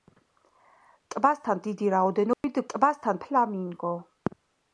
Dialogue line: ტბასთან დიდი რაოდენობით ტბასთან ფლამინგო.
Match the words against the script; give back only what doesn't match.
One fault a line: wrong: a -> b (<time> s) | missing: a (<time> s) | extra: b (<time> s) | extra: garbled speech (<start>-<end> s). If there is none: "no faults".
no faults